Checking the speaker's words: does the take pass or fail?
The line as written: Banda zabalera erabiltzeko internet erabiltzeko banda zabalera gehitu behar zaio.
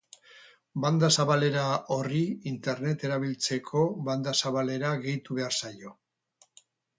fail